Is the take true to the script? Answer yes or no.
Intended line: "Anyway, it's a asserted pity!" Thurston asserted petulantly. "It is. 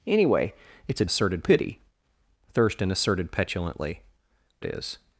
yes